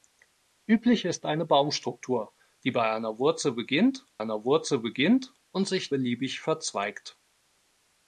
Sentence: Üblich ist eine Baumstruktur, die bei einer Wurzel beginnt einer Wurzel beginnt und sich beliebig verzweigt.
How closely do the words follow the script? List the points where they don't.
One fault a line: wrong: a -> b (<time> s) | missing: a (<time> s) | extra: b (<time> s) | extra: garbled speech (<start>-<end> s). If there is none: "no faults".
no faults